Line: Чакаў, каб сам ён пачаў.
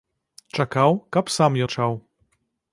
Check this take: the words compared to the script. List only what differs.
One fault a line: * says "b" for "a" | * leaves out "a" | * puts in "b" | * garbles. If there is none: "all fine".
* leaves out "ён"